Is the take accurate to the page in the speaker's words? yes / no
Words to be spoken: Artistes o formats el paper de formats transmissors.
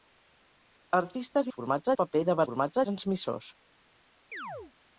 yes